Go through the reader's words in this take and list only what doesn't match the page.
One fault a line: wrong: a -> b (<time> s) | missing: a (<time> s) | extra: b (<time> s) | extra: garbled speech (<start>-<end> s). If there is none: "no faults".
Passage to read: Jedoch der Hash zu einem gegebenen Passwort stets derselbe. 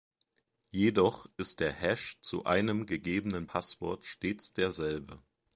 extra: ist (1.4 s)